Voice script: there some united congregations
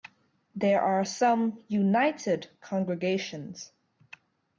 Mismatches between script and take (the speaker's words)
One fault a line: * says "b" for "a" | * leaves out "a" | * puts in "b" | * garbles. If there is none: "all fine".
* puts in "are"